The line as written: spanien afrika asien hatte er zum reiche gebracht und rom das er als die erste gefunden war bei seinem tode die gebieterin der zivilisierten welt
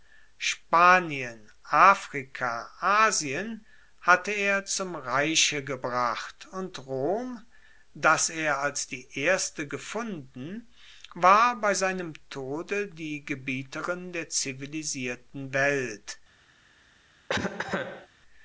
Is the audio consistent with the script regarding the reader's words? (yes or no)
yes